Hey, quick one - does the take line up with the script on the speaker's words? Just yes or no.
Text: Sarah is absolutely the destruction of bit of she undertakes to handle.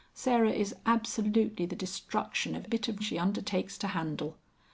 yes